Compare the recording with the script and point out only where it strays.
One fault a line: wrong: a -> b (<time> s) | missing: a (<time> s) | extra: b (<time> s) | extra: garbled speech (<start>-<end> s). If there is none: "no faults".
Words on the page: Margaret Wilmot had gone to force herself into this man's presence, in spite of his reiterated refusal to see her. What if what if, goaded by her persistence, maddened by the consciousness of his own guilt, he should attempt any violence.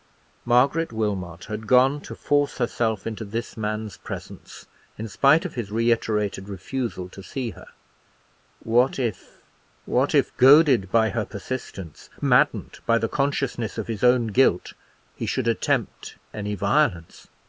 no faults